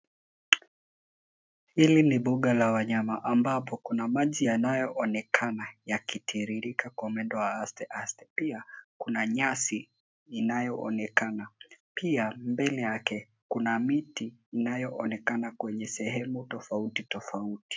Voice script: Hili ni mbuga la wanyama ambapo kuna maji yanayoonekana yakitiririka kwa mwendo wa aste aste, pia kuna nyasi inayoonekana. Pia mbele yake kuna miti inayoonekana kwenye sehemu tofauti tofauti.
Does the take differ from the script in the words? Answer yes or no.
no